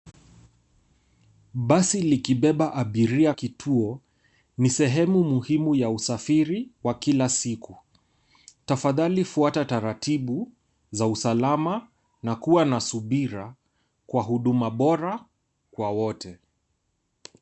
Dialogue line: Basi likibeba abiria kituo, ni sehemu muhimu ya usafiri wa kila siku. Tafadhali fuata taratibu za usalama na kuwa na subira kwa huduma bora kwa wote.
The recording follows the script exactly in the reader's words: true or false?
true